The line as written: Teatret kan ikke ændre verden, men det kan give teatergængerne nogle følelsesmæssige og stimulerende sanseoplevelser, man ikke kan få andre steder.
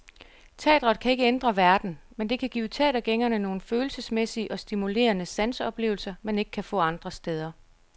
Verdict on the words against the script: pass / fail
pass